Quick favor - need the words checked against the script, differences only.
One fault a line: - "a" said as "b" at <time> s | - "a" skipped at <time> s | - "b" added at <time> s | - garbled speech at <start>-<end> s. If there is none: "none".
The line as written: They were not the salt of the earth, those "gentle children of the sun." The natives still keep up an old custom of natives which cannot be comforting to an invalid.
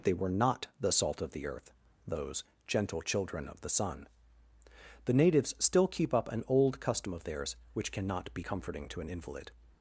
- "natives" said as "theirs" at 7.2 s